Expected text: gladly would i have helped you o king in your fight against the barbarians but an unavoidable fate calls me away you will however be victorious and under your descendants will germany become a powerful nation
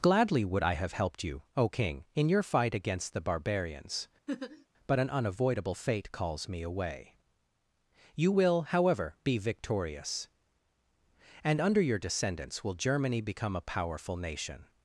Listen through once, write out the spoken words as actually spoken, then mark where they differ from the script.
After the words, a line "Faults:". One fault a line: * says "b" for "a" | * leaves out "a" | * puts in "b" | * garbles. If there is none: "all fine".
gladly would i have helped you o king in your fight against the barbarians but an unavoidable fate calls me away you will however be victorious and under your descendants will germany become a powerful nation
Faults:
all fine